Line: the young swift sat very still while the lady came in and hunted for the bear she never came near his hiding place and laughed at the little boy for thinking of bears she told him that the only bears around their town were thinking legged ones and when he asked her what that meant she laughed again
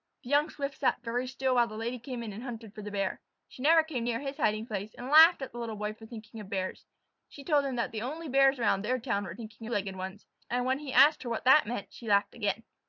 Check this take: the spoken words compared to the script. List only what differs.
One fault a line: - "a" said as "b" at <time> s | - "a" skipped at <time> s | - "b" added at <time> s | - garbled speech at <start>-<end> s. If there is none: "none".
none